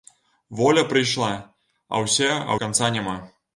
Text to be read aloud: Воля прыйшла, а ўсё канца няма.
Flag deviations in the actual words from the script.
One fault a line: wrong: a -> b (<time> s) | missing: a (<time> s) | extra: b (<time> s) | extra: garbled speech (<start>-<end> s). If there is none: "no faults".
missing: ўсё (2.0 s)